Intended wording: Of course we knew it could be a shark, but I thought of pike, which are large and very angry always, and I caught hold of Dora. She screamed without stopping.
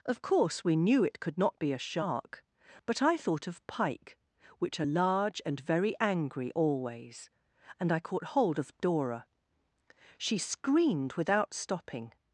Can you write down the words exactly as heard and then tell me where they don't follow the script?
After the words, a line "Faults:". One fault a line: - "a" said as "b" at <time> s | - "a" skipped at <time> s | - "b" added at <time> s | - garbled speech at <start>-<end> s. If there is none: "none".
Of course we knew it could not be a shark, but I thought of pike, which are large and very angry always, and I caught hold of Dora. She screamed without stopping.
Faults:
- "not" added at 1.4 s